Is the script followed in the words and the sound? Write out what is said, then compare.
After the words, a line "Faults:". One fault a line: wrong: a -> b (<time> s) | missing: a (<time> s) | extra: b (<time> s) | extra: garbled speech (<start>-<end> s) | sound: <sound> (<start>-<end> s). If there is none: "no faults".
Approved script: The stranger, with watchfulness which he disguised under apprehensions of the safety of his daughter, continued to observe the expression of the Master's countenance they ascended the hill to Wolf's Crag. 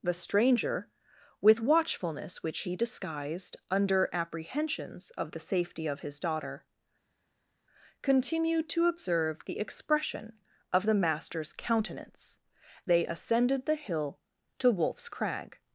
The stranger, with watchfulness which he disguised under apprehensions of the safety of his daughter, continued to observe the expression of the Master's countenance they ascended the hill to Wolf's Crag.
Faults:
no faults